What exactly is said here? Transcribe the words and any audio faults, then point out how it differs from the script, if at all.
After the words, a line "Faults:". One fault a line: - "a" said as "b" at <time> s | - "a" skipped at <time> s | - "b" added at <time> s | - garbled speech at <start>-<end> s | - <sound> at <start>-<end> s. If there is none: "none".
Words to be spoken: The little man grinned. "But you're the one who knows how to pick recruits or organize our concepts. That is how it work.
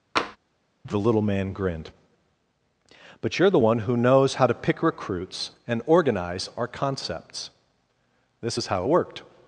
The little man grinned. "But you're the one who knows how to pick recruits and organize our concepts. This is how it worked.
Faults:
- tap at 0.2-0.4 s
- "or" said as "and" at 5.7 s
- "That" said as "This" at 8.4 s
- "work" said as "worked" at 8.9 s